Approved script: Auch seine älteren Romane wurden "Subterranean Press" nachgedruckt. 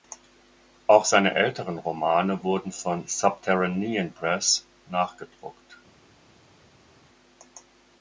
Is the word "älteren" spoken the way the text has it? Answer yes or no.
yes